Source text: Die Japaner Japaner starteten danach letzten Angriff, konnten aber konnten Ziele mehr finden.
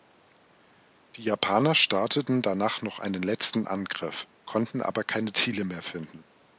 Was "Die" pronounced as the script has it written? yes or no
yes